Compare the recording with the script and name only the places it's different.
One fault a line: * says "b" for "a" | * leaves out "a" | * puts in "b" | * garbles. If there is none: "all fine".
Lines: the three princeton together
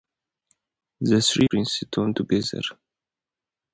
all fine